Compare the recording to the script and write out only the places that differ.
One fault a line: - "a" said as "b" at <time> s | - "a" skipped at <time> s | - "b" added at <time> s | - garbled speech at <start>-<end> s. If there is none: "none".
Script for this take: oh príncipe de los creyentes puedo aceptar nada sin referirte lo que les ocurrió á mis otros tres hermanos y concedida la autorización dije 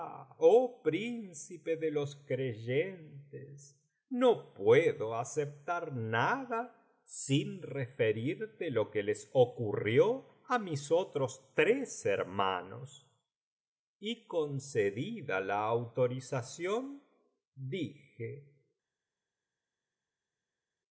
- "no" added at 4.1 s